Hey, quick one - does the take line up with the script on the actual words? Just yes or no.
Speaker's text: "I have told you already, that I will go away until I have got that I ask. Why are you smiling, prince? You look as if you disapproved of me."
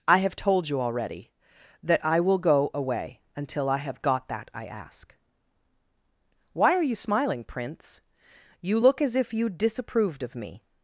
yes